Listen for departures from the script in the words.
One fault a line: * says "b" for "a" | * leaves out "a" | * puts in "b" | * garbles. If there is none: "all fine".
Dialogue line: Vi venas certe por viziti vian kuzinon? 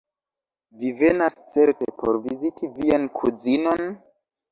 all fine